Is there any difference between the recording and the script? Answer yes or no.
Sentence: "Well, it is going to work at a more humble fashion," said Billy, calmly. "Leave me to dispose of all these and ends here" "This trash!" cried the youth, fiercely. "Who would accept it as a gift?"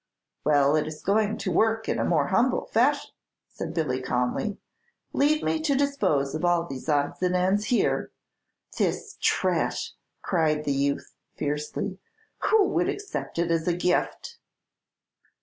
yes